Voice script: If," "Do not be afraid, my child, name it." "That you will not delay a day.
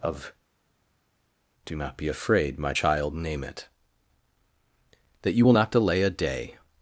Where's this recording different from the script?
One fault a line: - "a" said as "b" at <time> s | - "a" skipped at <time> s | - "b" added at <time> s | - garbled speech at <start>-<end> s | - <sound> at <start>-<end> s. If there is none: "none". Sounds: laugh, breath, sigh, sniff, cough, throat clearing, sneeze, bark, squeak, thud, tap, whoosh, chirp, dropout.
- "If" said as "Of" at 0.0 s